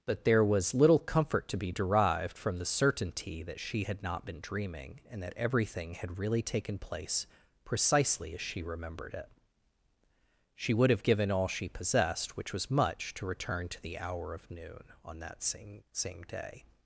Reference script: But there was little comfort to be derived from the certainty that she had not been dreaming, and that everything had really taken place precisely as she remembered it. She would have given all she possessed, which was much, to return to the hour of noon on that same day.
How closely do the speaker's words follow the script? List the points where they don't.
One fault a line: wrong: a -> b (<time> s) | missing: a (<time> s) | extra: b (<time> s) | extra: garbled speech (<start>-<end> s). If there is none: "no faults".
extra: same (15.9 s)